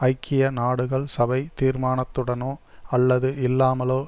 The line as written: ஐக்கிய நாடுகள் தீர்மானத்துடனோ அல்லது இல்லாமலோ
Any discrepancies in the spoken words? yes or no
yes